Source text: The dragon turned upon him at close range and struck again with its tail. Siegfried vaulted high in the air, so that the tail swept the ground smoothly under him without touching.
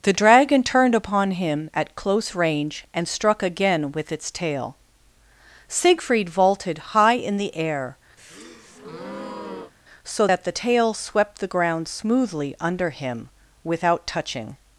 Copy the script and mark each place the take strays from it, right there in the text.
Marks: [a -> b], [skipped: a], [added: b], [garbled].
The dragon turned upon him at close range and struck again with its tail. Siegfried vaulted high in the air, so that the tail swept the ground smoothly under him without touching.